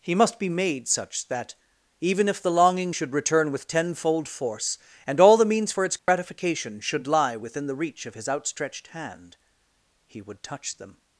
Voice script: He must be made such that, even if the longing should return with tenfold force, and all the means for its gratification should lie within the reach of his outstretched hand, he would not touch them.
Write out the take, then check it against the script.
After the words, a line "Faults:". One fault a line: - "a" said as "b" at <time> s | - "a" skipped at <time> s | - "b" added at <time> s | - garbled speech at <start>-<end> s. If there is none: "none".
He must be made such that, even if the longing should return with tenfold force, and all the means for its gratification should lie within the reach of his outstretched hand, he would touch them.
Faults:
- "not" skipped at 10.4 s